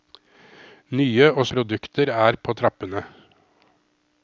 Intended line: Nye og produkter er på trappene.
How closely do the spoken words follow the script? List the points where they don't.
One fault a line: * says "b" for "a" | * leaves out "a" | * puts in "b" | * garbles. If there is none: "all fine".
all fine